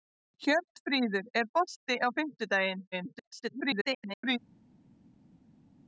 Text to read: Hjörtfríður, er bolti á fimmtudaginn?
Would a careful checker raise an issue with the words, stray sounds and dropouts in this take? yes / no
yes